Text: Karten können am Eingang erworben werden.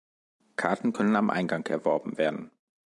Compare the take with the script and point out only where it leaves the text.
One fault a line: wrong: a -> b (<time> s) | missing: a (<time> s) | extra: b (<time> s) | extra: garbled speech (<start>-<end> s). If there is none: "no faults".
no faults